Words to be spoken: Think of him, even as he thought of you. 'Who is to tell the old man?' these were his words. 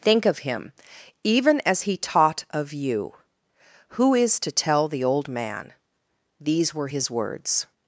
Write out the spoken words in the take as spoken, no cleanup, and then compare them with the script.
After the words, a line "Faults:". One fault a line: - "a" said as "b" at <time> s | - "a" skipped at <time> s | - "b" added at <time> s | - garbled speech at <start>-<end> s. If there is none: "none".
Think of him, even as he taught of you. 'Who is to tell the old man?' these were his words.
Faults:
- "thought" said as "taught" at 1.9 s